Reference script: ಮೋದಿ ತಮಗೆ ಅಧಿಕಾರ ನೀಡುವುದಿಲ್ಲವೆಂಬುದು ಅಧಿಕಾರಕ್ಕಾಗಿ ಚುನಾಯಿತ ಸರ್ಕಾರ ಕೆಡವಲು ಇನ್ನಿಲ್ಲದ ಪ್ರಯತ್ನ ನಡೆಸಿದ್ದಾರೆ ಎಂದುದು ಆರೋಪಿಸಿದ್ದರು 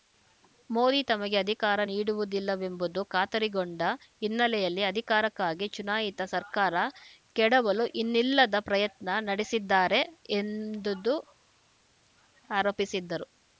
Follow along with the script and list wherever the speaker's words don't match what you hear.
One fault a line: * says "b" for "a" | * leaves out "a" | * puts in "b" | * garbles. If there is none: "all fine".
* puts in "ಖಾತರಿಗೊಂಡ ಹಿನ್ನೆಲೆಯಲ್ಲಿ"